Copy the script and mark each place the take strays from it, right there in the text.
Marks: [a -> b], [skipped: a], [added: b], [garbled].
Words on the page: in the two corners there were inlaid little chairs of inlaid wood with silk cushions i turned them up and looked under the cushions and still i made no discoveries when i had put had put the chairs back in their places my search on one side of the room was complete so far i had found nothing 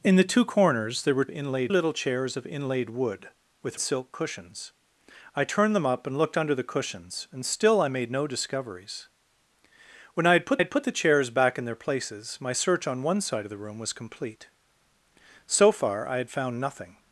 in the two corners there were inlaid little chairs of inlaid wood with silk cushions i turned them up and looked under the cushions and still i made no discoveries when i had put had put the chairs back in their places my search on one side of the room was complete so far i had found nothing